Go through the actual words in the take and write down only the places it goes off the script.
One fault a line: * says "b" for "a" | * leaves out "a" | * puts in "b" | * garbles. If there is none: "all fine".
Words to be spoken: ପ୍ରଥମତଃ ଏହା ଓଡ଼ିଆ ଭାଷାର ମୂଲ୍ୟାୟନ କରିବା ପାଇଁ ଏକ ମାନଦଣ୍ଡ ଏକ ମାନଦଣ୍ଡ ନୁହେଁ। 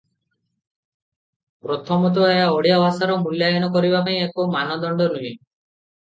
* leaves out "ଏକ ମାନଦଣ୍ଡ"